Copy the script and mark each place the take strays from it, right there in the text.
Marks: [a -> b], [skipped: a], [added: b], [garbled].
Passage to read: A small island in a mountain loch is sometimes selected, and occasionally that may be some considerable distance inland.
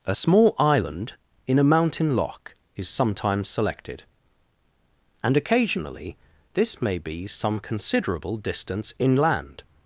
A small island in a mountain loch is sometimes selected, and occasionally [that -> this] may be some considerable distance inland.